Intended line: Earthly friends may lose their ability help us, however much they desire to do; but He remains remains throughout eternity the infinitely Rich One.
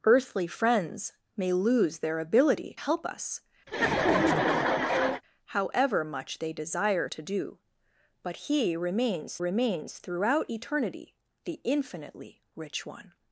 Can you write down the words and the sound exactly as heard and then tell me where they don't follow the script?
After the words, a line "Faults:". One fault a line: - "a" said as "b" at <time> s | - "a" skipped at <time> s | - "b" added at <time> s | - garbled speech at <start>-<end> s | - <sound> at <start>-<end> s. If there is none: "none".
Earthly friends may lose their ability help us, however much they desire to do; but He remains remains throughout eternity the infinitely Rich One.
Faults:
- laugh at 3.7-5.2 s